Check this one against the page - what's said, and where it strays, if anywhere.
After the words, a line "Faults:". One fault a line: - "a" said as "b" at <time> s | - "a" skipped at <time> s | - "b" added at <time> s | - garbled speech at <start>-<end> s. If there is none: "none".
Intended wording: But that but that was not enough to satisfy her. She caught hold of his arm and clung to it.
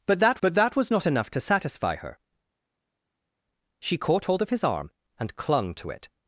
But that but that was not enough to satisfy her. She caught hold of his arm and clung to it.
Faults:
none